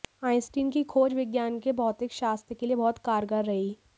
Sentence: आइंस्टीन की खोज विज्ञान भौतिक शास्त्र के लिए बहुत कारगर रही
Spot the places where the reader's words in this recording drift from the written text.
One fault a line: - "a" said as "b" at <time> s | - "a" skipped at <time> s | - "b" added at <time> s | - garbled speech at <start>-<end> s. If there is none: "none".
- "के" added at 1.6 s